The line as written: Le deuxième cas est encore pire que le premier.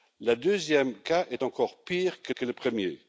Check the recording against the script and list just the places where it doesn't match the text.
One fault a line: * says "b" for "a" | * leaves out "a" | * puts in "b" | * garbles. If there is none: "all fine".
* puts in "que"